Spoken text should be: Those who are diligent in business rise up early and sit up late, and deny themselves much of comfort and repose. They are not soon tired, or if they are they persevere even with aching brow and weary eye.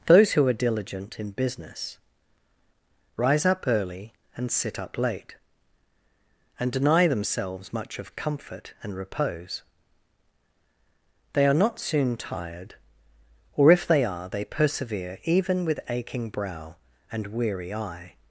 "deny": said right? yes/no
yes